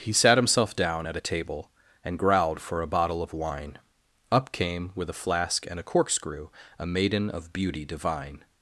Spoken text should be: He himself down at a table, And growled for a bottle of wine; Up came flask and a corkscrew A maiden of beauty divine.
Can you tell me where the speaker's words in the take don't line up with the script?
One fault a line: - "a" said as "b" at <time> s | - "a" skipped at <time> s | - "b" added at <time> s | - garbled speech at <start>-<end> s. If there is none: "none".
- "sat" added at 0.1 s
- "with a" added at 4.9 s